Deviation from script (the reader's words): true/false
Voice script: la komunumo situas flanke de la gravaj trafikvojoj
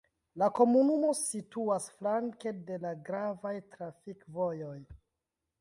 false